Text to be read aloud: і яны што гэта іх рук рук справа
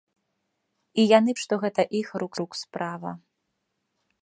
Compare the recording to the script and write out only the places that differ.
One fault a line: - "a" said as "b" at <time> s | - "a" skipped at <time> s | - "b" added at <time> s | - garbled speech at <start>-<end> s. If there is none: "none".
none